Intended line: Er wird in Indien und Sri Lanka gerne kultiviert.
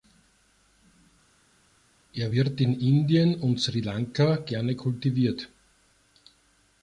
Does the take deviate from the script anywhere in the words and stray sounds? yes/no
no